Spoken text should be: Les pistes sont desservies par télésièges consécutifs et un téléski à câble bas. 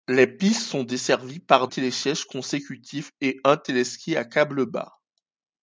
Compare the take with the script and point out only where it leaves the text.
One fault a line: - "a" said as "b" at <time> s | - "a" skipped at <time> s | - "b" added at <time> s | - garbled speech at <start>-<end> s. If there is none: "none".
none